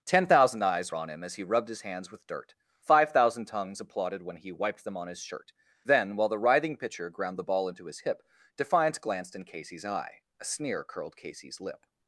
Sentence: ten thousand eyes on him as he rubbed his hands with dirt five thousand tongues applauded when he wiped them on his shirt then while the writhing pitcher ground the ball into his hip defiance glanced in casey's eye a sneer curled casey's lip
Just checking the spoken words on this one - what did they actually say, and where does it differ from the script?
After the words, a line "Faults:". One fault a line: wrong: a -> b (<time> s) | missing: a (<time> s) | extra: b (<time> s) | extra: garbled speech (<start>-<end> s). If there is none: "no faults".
ten thousand eyes on him as he rubbed his hands with dirt five thousand tongues applauded when he wiped them on his shirt then while the writhing pitcher ground the ball into his hip defiance glanced in casey's eye a sneer curled casey's lip
Faults:
no faults